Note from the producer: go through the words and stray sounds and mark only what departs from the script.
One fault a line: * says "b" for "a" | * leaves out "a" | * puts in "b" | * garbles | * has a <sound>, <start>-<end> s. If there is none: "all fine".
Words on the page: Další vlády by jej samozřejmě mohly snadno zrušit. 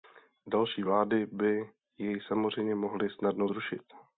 all fine